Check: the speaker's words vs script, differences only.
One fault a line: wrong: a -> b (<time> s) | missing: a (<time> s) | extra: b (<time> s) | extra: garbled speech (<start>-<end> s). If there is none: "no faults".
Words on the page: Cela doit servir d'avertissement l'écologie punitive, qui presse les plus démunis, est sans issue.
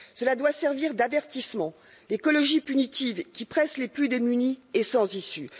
no faults